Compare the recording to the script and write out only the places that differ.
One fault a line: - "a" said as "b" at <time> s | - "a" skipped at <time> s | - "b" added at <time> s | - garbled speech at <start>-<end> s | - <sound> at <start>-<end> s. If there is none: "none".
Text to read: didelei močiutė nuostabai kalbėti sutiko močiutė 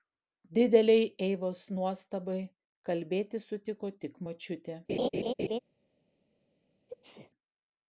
- "močiutė" said as "eivos" at 1.2 s
- "tik" added at 4.1 s
- laugh at 4.9-5.6 s
- sneeze at 6.9-7.3 s